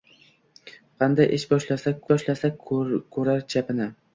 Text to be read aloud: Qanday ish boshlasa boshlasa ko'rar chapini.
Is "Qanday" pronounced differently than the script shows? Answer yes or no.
no